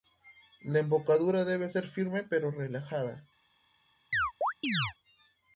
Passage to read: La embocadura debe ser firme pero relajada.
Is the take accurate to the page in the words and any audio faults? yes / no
no